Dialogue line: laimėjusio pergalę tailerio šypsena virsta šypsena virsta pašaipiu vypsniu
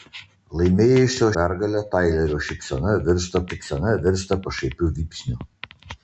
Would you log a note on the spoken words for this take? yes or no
no